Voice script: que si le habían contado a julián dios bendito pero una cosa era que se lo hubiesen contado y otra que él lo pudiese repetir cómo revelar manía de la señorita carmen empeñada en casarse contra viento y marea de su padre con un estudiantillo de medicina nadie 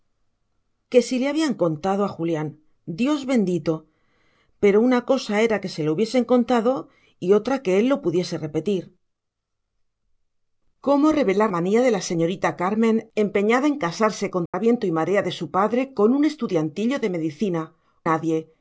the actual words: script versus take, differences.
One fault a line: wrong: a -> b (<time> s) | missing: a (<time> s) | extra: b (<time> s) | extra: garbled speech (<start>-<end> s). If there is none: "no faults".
no faults